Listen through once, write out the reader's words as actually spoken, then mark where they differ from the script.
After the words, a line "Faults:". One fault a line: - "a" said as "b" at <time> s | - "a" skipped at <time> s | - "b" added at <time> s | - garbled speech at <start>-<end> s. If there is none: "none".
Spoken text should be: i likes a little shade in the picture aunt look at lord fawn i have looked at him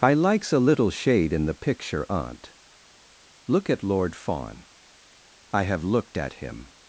i likes a little shade in the picture aunt look at lord fawn i have looked at him
Faults:
none